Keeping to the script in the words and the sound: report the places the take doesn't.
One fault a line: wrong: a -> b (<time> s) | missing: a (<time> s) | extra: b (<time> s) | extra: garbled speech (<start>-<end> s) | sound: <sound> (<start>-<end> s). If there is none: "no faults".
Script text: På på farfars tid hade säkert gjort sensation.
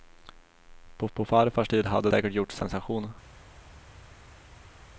no faults